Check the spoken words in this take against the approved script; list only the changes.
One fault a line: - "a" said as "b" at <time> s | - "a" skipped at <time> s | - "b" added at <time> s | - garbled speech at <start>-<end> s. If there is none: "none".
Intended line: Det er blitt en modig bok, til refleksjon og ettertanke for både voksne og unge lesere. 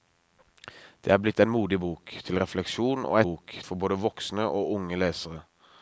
- "ettertanke" said as "bok" at 3.2 s